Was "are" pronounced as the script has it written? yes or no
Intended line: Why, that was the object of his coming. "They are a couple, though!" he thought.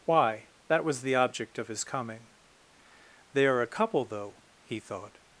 yes